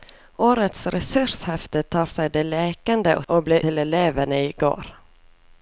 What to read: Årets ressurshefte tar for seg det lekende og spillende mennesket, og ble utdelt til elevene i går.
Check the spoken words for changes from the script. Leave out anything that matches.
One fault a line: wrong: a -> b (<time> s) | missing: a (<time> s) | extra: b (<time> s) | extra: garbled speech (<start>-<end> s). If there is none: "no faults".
missing: for (2.0 s)
missing: spillende mennesket (3.3 s)
missing: utdelt (3.6 s)